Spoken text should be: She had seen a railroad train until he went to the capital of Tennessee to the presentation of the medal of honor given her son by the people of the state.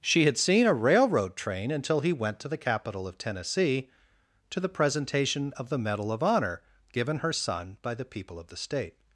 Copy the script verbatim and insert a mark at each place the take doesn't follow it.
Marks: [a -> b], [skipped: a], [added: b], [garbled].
She had seen a railroad train until he went to the capital of Tennessee to the presentation of the medal of honor given her son by the people of the state.